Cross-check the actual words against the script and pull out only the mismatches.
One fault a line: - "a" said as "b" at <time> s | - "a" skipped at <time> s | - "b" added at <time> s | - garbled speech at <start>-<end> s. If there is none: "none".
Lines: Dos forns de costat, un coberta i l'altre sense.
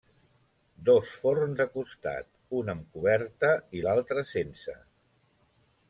- "amb" added at 2.7 s